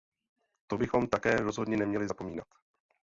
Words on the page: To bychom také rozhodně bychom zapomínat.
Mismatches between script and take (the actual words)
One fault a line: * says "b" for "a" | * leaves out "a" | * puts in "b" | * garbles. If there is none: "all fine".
* says "neměli" for "bychom"